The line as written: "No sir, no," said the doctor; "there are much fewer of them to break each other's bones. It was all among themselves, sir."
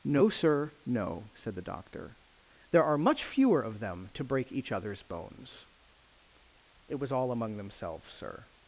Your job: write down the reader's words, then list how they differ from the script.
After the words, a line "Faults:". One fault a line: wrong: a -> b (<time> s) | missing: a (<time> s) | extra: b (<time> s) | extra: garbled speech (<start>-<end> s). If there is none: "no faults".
"No sir, no," said the doctor; "there are much fewer of them to break each other's bones. It was all among themselves, sir."
Faults:
no faults